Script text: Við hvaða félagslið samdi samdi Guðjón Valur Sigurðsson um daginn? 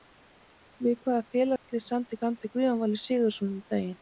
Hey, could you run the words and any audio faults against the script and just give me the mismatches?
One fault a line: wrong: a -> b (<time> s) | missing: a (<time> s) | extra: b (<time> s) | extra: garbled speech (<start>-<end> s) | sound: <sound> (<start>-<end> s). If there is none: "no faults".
sound: dropout (1.6-1.7 s)